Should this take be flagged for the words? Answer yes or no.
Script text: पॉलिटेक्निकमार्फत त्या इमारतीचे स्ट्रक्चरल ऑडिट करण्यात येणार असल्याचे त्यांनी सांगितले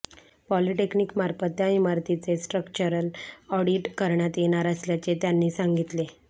no